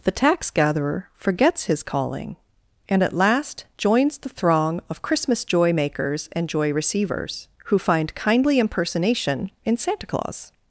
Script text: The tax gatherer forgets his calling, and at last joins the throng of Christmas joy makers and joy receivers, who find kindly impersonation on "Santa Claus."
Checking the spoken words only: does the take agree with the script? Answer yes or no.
no